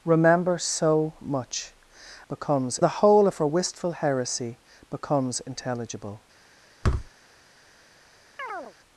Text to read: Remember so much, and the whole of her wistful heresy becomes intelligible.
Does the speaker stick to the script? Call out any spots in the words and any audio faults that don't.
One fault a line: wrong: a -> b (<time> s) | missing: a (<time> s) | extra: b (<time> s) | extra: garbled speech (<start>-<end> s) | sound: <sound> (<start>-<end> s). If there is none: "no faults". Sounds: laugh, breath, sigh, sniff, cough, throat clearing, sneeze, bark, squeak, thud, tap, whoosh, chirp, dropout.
wrong: and -> becomes (2.3 s)
sound: thud (6.8-7.1 s)
sound: chirp (8.4-8.7 s)